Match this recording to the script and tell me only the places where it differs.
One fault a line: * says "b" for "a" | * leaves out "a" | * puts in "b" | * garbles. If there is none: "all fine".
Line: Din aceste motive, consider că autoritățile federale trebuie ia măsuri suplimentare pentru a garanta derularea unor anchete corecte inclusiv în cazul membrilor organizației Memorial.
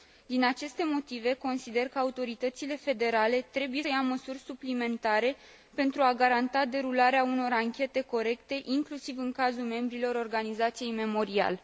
all fine